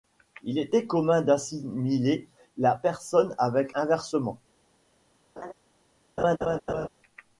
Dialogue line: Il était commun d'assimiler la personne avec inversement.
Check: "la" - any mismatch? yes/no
no